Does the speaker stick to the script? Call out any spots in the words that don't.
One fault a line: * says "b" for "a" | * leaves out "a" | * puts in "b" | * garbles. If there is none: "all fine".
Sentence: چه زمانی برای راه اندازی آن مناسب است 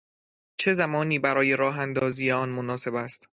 all fine